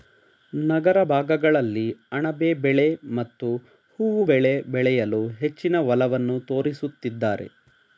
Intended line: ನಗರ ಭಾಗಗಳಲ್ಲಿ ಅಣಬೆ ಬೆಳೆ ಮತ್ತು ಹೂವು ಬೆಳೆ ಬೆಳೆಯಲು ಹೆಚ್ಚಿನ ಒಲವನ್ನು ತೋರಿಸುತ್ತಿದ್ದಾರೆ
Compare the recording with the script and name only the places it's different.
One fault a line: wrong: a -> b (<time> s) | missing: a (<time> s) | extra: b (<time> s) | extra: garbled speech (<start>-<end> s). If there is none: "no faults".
no faults